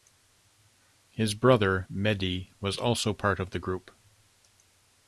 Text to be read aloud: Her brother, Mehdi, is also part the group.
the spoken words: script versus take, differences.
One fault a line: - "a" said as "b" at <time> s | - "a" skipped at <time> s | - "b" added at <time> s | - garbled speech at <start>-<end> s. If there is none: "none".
- "Her" said as "His" at 1.1 s
- "is" said as "was" at 2.6 s
- "of" added at 3.4 s